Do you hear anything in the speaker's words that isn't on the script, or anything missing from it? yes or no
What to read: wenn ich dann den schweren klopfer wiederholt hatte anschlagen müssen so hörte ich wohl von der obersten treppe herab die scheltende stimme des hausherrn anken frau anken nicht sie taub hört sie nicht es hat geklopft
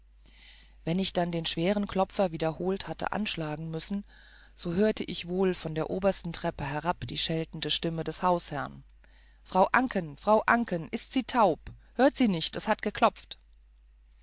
yes